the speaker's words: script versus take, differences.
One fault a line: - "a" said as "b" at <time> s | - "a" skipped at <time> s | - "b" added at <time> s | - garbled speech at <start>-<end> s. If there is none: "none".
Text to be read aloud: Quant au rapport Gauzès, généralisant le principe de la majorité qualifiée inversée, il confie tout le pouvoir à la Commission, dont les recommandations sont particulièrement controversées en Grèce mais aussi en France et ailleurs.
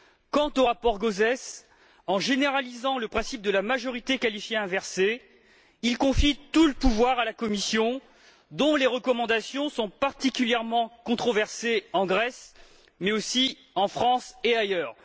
- "en" added at 2.1 s